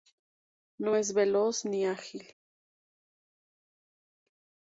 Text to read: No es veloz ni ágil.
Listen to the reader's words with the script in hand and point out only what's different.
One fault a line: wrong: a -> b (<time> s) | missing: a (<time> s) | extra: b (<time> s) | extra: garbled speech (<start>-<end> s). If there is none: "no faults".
no faults